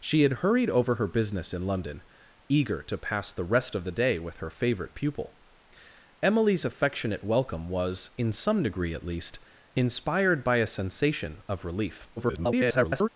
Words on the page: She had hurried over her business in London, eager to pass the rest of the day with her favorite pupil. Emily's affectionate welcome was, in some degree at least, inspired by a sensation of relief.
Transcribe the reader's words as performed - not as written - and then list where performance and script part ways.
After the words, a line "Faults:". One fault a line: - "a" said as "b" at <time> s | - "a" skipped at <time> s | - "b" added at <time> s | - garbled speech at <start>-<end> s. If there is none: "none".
She had hurried over her business in London, eager to pass the rest of the day with her favorite pupil. Emily's affectionate welcome was, in some degree at least, inspired by a sensation of relief. [garbled]
Faults:
- garbled speech at 12.2-13.1 s